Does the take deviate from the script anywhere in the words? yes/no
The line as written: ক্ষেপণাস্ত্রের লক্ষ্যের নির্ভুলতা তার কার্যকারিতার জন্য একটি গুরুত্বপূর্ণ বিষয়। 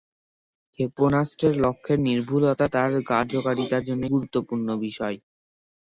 yes